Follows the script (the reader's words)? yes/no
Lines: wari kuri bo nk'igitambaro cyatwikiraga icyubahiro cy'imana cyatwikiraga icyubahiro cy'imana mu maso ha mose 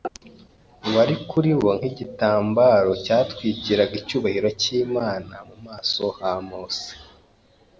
no